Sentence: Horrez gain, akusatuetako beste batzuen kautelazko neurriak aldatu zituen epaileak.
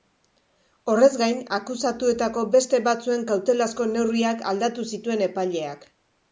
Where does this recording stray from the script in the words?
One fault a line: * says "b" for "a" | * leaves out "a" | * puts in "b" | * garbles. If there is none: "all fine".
all fine